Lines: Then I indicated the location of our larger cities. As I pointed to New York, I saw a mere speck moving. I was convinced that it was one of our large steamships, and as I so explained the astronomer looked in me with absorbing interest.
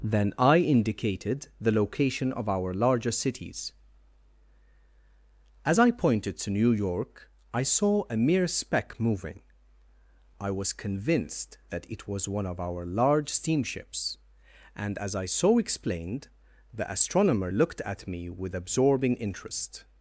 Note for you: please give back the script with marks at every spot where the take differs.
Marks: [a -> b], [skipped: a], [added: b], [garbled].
Then I indicated the location of our larger cities. As I pointed to New York, I saw a mere speck moving. I was convinced that it was one of our large steamships, and as I so explained the astronomer looked [in -> at] me with absorbing interest.